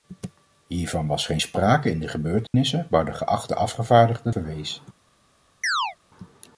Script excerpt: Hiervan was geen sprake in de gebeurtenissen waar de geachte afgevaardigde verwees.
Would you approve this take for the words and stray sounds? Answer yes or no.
no